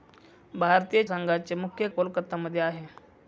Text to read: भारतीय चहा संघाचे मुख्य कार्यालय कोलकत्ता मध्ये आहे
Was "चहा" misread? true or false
true